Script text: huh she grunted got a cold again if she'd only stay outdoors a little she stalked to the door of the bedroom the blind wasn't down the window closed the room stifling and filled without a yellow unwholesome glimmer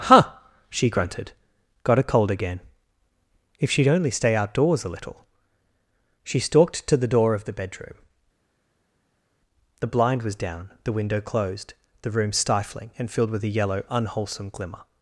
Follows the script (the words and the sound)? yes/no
no